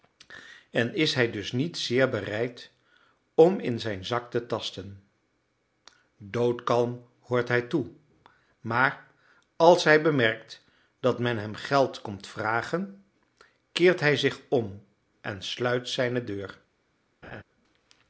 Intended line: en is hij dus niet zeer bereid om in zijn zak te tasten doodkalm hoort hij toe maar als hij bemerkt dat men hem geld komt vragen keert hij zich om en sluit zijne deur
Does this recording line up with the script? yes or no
yes